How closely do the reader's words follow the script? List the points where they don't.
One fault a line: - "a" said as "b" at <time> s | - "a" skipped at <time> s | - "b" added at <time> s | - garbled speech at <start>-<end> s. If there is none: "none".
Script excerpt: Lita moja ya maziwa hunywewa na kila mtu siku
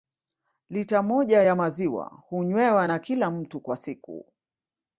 - "kwa" added at 3.6 s